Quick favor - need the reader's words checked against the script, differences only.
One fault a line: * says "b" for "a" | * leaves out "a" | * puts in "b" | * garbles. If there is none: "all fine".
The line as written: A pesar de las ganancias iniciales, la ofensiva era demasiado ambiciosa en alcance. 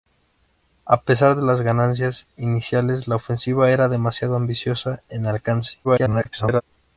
* garbles